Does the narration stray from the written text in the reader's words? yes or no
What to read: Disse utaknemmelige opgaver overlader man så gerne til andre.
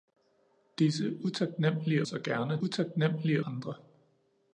yes